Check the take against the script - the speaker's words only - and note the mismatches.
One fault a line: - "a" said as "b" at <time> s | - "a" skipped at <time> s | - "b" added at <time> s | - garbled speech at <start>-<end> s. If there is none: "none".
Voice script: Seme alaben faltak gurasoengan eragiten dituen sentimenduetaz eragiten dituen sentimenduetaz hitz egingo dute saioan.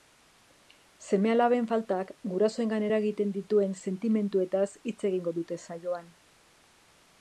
- "eragiten dituen sentimenduetaz" skipped at 4.7 s